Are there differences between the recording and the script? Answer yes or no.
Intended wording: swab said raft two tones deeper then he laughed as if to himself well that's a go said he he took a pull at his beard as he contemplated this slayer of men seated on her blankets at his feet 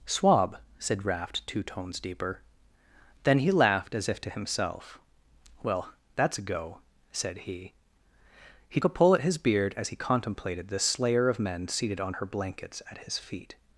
yes